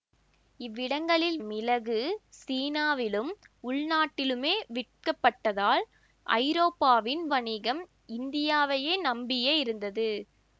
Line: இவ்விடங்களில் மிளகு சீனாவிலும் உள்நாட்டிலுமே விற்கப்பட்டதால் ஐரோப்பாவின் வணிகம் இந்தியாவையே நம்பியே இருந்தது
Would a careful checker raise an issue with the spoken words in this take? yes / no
no